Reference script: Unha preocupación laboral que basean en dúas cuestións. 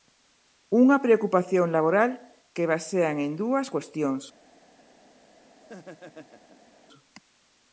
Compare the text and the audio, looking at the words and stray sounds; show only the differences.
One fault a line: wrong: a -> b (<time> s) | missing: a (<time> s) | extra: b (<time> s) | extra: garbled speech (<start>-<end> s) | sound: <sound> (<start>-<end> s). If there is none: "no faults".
sound: laugh (5.6-6.7 s)